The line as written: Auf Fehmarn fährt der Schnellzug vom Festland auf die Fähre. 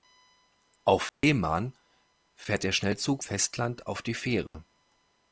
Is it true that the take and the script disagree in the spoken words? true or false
true